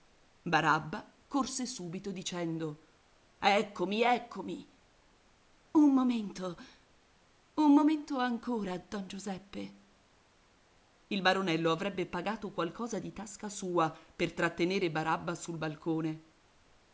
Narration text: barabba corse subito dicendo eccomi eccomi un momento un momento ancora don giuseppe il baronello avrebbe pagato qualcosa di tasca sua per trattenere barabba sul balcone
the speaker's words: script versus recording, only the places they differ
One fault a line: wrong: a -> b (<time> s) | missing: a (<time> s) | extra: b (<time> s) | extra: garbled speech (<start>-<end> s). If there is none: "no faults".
no faults